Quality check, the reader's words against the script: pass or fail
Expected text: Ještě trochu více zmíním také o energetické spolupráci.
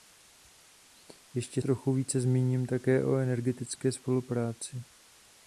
pass